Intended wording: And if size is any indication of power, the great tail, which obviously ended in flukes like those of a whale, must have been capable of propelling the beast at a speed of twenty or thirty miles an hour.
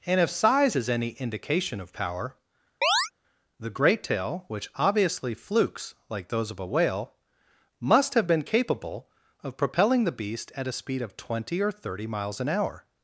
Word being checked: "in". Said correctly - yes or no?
no